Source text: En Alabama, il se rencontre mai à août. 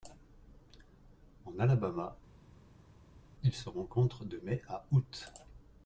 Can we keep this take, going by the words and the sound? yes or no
no